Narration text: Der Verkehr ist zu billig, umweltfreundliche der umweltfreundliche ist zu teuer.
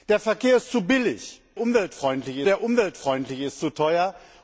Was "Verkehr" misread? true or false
false